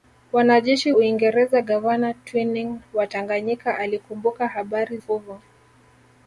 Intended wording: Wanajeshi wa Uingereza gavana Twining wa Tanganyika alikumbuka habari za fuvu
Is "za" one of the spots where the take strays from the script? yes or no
yes